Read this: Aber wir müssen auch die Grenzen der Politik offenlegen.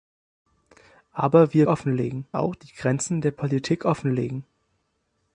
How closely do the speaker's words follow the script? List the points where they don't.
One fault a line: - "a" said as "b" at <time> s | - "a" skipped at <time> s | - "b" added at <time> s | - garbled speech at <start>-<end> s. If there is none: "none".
- "müssen" said as "offenlegen" at 1.7 s